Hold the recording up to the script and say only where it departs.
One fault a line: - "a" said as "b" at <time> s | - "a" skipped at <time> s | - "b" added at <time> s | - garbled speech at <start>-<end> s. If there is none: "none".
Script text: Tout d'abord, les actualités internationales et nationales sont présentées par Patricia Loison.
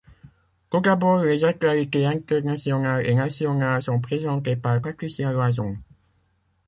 none